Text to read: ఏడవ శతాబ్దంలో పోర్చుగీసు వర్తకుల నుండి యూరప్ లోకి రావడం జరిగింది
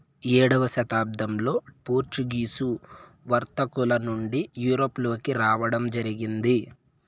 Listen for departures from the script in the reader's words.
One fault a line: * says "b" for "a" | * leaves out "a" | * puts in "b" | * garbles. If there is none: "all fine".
all fine